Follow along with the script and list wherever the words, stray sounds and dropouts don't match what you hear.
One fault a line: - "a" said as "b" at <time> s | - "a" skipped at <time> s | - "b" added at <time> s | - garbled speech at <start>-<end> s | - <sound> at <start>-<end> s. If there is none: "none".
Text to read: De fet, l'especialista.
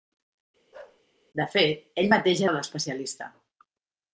- bark at 0.7-1.0 s
- "ell mateix era" added at 2.0 s